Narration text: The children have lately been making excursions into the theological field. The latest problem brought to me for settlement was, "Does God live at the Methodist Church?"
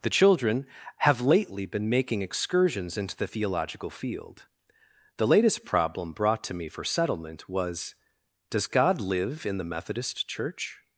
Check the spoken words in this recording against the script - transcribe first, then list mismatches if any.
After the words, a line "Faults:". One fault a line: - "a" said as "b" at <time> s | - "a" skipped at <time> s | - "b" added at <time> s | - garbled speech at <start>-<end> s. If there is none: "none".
The children have lately been making excursions into the theological field. The latest problem brought to me for settlement was, "Does God live in the Methodist Church?"
Faults:
- "at" said as "in" at 9.4 s